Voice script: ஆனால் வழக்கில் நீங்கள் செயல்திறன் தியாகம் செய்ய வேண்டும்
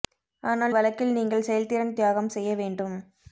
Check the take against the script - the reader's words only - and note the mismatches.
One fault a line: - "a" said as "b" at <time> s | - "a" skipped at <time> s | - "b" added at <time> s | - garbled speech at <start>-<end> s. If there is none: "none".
none